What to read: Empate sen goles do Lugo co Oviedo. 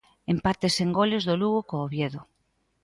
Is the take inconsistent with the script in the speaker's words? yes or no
no